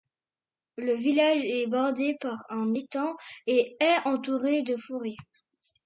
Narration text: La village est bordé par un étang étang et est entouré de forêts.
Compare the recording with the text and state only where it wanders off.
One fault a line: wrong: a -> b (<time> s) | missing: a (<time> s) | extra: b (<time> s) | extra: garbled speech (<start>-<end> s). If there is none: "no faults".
wrong: La -> Le (0.8 s)
missing: étang (3.2 s)